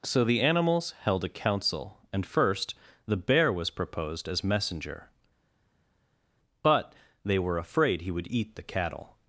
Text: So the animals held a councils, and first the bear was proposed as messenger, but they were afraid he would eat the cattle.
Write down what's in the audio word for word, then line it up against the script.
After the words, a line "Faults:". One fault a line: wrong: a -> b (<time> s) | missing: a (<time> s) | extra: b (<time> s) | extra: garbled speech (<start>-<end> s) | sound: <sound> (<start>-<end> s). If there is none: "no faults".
So the animals held a council, and first the bear was proposed as messenger, but they were afraid he would eat the cattle.
Faults:
wrong: councils -> council (1.3 s)